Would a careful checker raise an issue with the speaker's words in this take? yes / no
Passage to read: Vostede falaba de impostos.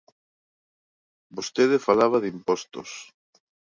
no